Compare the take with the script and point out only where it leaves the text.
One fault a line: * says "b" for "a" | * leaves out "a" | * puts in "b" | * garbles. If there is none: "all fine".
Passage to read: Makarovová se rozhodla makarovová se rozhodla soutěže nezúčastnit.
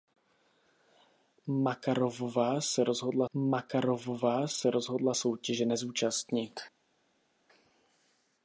all fine